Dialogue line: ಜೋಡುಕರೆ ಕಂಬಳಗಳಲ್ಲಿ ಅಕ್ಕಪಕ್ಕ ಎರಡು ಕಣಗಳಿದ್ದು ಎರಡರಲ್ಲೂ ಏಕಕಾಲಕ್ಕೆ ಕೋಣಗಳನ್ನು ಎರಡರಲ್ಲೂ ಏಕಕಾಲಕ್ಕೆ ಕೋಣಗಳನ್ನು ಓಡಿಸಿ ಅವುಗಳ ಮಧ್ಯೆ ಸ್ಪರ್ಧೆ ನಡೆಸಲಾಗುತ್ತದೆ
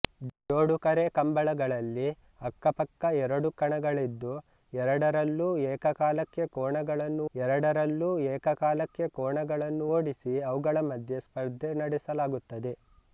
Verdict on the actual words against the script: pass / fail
pass